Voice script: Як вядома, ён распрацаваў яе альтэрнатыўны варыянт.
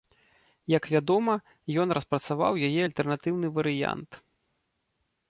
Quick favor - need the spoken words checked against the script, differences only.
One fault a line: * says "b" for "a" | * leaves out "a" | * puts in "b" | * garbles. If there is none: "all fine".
all fine